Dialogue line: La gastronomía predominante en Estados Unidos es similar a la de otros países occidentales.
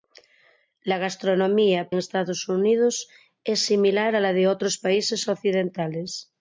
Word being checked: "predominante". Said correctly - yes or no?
no